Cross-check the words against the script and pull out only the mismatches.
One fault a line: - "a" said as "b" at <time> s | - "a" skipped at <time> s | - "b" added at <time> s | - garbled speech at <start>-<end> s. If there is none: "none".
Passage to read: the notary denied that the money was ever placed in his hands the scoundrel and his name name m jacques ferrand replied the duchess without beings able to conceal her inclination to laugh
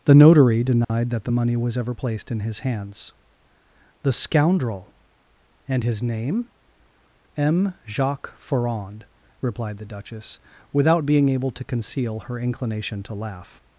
- "name" skipped at 6.5 s
- "beings" said as "being" at 11.1 s